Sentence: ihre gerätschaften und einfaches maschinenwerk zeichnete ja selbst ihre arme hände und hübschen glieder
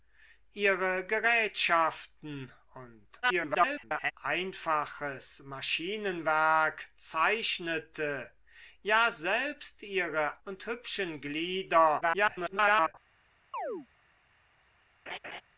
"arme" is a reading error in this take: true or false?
true